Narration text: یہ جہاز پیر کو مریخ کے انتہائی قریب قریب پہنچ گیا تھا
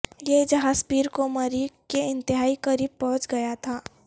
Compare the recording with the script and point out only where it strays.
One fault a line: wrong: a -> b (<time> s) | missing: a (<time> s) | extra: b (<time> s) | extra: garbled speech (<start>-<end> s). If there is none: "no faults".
missing: قریب (3.0 s)